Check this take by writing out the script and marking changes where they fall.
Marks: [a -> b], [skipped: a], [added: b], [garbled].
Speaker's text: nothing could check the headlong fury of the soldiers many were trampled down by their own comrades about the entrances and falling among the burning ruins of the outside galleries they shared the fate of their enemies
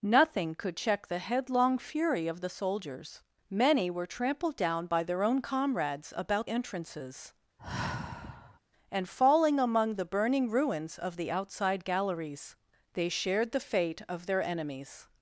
nothing could check the headlong fury of the soldiers many were trampled down by their own comrades about [skipped: the] entrances and falling among the burning ruins of the outside galleries they shared the fate of their enemies